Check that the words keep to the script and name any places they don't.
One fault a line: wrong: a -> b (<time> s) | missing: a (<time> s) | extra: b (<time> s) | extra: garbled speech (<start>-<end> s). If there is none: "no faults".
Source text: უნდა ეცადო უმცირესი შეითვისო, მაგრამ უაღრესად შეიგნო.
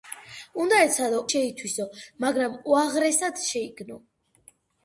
missing: უმცირესი (1.2 s)